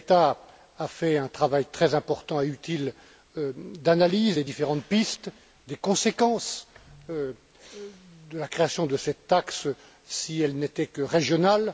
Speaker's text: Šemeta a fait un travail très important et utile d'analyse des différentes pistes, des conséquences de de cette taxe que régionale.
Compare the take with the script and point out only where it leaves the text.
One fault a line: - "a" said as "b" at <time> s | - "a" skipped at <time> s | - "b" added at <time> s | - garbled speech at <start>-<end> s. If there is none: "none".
- "la création" added at 8.3 s
- "si elle n'était" added at 10.0 s